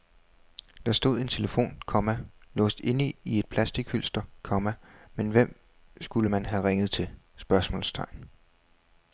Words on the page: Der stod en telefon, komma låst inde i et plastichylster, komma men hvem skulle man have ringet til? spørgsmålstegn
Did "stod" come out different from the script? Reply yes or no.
no